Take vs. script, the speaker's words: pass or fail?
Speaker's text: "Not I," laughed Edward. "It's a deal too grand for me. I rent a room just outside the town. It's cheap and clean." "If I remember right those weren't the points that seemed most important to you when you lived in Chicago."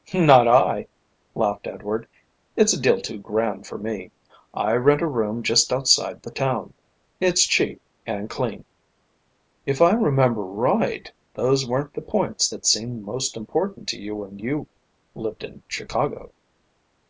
pass